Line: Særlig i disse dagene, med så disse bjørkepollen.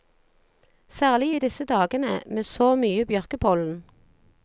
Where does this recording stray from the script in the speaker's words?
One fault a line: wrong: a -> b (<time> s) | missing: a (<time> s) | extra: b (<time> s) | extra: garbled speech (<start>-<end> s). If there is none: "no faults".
wrong: disse -> mye (2.8 s)